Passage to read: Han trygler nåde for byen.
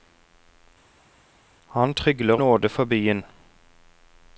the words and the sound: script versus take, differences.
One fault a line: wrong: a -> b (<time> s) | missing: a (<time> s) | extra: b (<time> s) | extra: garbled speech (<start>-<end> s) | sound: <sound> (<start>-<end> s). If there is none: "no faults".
no faults